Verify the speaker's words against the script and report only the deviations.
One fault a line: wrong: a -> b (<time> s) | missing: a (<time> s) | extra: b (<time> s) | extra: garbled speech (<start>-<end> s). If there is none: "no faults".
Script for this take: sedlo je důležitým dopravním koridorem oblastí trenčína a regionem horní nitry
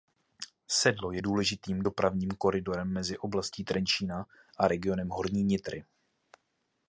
extra: mezi (2.9 s)